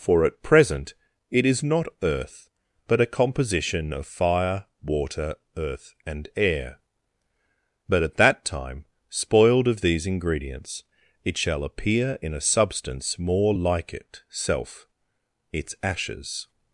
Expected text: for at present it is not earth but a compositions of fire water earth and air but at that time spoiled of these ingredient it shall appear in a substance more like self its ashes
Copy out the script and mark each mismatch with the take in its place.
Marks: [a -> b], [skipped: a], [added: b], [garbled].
for at present it is not earth but a [compositions -> composition] of fire water earth and air but at that time spoiled of these [ingredient -> ingredients] it shall appear in a substance more like [added: it] self its ashes